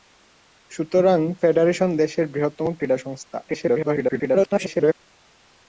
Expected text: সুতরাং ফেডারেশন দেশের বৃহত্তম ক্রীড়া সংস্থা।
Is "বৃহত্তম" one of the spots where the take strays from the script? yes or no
no